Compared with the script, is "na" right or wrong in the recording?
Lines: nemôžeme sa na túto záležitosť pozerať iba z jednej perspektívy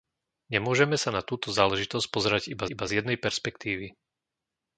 right